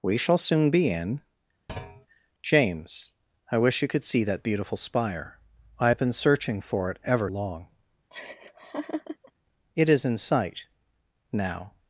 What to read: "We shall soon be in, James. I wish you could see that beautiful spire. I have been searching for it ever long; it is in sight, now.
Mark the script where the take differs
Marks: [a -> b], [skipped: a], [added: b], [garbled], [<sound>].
"We shall soon be in, [thud] James. I wish you could see that beautiful spire. I have been searching for it ever long; [laugh] it is in sight, now.